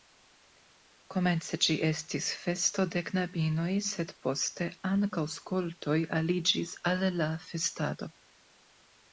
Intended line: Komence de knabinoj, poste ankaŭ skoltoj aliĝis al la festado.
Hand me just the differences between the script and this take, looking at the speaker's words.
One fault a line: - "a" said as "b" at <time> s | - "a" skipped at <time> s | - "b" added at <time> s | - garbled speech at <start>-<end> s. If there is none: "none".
- "ĝi estis festo" added at 1.6 s
- "sed" added at 3.9 s